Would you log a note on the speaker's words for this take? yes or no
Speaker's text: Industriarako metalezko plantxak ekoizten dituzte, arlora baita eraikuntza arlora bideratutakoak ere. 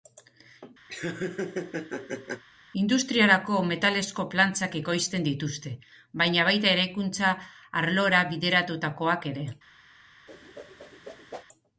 yes